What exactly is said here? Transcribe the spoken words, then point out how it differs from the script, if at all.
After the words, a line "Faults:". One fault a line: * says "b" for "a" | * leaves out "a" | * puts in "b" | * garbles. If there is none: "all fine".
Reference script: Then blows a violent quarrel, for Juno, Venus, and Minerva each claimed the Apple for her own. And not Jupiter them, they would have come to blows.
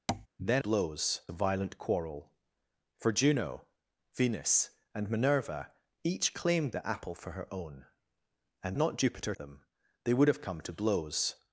Then blows a violent quarrel, for Juno, Venus, and Minerva each claimed the Apple for her own. And not Jupiter them, they would have come to blows.
Faults:
all fine